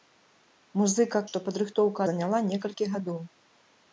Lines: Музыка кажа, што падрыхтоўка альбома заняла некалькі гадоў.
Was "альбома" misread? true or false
true